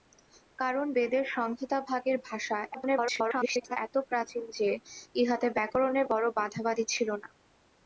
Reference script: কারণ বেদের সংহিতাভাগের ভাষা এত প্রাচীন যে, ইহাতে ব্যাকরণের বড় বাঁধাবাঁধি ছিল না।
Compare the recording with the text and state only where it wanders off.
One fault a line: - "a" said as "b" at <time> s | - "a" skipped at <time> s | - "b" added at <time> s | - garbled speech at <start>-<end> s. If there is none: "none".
- garbled speech at 2.7-3.8 s